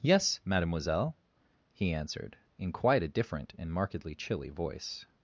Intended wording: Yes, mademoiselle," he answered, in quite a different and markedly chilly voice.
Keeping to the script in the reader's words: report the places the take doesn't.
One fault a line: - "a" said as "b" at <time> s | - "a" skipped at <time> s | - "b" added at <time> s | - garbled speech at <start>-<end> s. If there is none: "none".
none